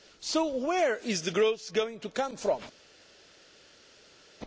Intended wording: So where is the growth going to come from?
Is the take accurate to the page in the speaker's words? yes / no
yes